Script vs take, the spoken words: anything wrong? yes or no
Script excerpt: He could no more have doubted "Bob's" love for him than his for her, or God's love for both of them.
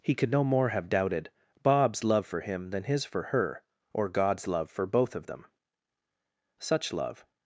yes